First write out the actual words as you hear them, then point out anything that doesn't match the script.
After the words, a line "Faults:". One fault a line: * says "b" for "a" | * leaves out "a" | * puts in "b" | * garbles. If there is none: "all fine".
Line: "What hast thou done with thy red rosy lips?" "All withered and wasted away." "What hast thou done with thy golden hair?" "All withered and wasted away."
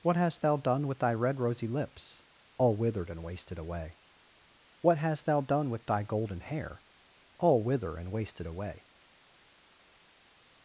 "What hast thou done with thy red rosy lips?" "All withered and wasted away." "What hast thou done with thy golden hair?" "All wither and wasted away."
Faults:
* says "wither" for "withered"